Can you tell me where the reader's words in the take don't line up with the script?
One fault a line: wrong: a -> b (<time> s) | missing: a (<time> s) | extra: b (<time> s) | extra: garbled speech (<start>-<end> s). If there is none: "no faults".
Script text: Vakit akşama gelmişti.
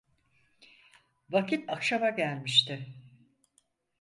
no faults